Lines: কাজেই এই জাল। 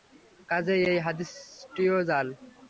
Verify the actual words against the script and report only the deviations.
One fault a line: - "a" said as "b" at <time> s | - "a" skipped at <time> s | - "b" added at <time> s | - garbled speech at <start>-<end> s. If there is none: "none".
- "হাদীসটিও" added at 1.1 s